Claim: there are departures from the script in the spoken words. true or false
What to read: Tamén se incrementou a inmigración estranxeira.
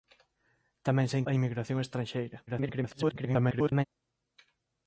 true